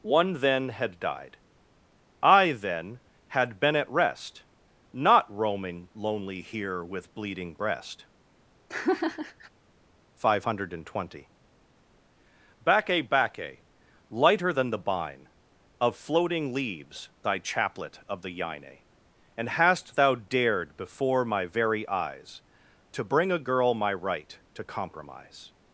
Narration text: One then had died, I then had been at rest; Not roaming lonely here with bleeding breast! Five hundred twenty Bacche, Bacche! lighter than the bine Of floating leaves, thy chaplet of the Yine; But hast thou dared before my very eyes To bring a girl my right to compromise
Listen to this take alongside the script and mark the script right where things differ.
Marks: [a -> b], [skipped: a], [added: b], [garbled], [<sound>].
One then had died, I then had been at rest; Not roaming lonely here with bleeding breast! [laugh] Five hundred twenty Bacche, Bacche! lighter than the bine Of floating leaves, thy chaplet of the Yine; [But -> And] hast thou dared before my very eyes To bring a girl my right to compromise